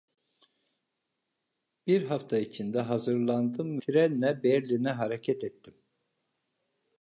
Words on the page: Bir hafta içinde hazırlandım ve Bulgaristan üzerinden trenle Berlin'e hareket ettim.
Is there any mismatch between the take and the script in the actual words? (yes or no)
yes